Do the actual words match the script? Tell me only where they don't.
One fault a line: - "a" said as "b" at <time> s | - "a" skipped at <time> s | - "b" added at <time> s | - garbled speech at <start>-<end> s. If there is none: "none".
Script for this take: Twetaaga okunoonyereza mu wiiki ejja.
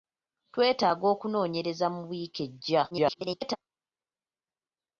- garbled speech at 2.9-3.6 s